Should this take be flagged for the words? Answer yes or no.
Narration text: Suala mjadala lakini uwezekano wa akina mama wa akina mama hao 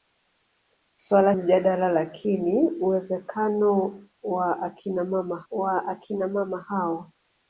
no